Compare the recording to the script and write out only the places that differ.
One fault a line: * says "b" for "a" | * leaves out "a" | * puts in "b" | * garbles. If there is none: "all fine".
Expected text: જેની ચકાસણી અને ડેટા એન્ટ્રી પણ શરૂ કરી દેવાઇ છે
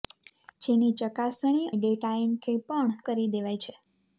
* leaves out "અને"
* leaves out "શરૂ"